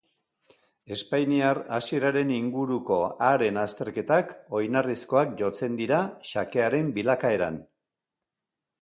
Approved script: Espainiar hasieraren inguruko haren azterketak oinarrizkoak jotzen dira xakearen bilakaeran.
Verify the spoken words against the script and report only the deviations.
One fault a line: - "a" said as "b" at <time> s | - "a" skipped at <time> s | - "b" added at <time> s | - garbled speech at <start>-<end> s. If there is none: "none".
none